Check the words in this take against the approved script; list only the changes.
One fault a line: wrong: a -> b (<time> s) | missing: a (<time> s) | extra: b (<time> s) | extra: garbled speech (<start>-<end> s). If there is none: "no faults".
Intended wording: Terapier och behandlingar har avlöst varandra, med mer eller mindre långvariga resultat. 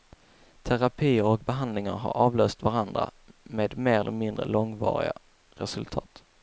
no faults